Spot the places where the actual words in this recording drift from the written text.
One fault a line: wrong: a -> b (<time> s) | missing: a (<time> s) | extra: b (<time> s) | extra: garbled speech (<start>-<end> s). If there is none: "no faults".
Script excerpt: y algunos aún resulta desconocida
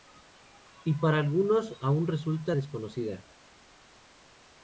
extra: para (0.9 s)